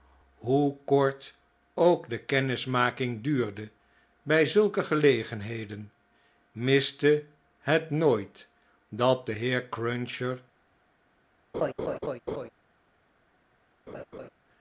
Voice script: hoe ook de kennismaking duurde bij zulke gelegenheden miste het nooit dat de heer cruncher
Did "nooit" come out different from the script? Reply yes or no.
no